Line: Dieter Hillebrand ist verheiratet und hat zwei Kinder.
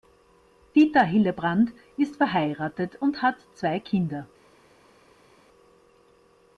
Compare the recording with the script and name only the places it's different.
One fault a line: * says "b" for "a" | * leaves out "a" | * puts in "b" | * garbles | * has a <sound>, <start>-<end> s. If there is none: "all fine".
all fine